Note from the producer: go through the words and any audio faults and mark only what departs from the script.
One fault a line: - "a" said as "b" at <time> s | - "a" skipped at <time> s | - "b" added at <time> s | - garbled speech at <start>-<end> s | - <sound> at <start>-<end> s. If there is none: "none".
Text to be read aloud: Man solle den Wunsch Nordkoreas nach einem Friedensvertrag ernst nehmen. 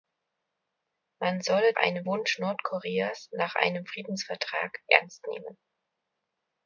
- "den" said as "einem" at 1.8 s